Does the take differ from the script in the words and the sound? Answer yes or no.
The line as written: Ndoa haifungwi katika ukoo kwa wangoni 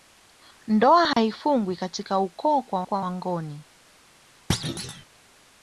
yes